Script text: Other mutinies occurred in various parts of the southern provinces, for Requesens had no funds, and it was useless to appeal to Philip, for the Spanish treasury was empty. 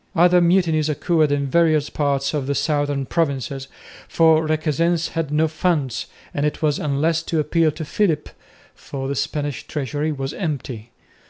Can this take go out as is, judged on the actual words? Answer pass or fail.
pass